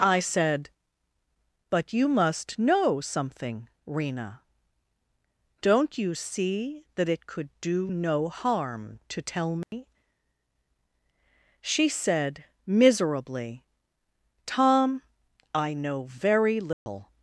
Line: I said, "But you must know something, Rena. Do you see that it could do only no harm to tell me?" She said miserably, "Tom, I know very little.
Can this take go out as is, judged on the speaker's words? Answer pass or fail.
fail